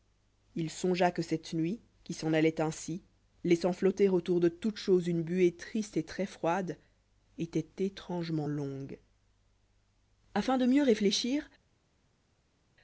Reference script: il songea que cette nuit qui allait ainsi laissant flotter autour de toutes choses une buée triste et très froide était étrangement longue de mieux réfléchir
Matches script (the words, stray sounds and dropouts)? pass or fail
fail